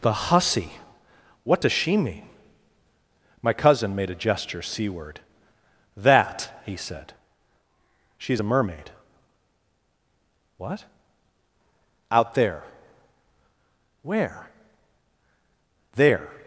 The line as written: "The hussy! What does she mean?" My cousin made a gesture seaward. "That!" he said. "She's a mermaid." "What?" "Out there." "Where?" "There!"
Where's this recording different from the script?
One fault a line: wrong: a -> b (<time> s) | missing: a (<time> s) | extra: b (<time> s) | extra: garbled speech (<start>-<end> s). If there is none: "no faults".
no faults